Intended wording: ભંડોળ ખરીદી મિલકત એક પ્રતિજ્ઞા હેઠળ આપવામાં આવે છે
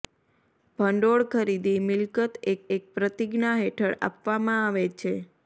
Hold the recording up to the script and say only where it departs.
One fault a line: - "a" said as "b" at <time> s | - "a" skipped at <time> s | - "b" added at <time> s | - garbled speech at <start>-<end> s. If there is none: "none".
- "એક" added at 2.8 s